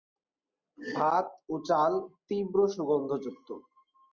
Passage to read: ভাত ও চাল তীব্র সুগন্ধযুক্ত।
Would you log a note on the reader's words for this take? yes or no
no